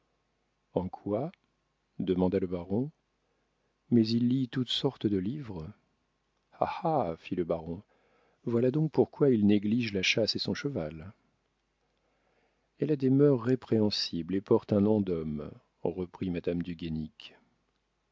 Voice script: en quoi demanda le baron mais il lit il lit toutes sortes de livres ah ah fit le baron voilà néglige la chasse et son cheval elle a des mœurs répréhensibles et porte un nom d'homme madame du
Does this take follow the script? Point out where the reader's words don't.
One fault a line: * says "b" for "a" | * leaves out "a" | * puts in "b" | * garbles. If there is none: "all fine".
* leaves out "il lit"
* puts in "donc pourquoi il"
* puts in "reprit"